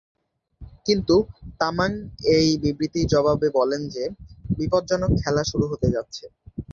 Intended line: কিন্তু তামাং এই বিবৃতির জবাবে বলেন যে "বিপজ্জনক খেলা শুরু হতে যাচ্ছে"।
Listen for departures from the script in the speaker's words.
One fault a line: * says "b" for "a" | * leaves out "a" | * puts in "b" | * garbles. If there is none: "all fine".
all fine